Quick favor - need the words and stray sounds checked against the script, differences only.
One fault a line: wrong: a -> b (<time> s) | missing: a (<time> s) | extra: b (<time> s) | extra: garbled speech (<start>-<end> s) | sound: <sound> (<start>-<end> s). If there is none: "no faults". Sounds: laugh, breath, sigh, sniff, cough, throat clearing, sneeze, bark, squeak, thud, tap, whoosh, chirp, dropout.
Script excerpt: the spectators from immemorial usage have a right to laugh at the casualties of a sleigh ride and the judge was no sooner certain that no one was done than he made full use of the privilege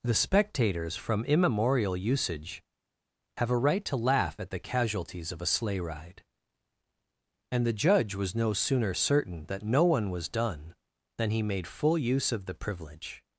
no faults